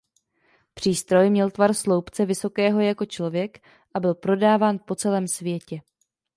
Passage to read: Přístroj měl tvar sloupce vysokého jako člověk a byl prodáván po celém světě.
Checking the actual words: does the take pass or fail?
pass